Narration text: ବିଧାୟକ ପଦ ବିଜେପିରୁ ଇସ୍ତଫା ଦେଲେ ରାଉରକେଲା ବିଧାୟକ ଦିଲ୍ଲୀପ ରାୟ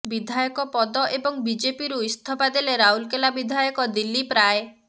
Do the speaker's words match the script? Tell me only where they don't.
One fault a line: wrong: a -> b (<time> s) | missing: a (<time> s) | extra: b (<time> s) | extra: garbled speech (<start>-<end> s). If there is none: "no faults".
extra: ଏବଂ (1.1 s)